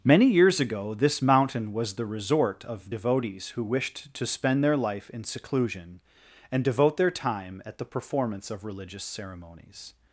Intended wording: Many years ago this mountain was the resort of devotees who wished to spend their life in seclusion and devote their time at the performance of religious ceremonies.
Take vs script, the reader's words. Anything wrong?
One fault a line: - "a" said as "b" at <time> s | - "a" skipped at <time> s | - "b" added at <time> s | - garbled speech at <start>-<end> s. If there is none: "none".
none